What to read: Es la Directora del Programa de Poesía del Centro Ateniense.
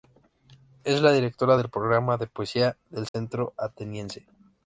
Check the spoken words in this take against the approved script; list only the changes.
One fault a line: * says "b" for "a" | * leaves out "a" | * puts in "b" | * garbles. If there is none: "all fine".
all fine